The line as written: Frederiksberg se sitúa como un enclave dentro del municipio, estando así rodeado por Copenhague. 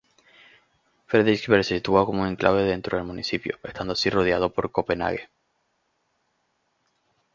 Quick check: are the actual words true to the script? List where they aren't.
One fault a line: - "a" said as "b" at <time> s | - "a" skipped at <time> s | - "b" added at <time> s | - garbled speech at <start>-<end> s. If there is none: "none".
none